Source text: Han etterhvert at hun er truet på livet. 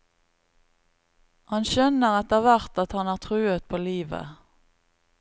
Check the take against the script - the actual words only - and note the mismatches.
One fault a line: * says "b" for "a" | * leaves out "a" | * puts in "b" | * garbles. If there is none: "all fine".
* puts in "skjønner"
* says "han" for "hun"